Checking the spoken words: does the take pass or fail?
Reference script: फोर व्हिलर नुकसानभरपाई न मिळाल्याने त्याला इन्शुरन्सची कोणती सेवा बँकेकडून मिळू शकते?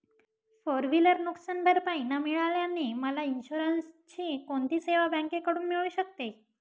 fail